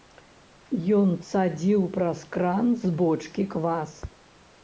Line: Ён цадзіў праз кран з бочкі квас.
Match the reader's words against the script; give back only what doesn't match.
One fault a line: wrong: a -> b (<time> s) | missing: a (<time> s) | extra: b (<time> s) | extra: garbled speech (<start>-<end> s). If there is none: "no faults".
no faults